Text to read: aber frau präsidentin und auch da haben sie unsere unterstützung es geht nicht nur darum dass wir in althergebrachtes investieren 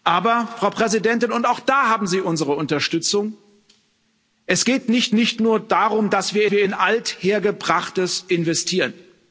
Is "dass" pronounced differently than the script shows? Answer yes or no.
no